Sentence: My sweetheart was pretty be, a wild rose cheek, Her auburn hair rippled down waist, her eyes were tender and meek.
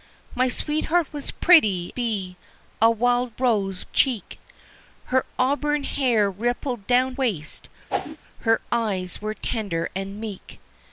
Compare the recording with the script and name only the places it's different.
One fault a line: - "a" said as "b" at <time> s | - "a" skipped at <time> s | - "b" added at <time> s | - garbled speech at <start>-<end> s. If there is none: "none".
none